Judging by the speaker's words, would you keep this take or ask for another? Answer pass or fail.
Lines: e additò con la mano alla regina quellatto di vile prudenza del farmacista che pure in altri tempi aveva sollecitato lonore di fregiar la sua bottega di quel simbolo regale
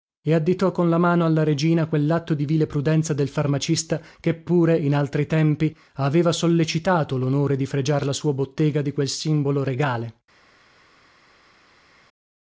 pass